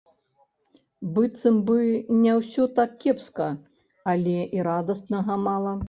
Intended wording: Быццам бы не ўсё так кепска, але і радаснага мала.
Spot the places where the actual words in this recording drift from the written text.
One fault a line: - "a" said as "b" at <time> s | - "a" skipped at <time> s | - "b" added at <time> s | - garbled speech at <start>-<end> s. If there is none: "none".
none